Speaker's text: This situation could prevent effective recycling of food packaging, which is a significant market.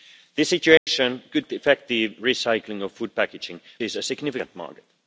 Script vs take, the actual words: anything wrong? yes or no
yes